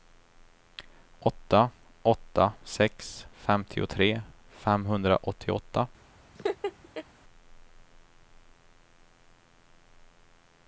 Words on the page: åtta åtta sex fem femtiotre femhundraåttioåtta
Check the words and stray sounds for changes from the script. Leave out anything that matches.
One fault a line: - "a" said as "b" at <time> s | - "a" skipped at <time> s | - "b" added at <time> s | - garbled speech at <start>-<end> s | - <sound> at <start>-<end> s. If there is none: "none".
- "fem" skipped at 3.3 s
- laugh at 6.4-7.1 s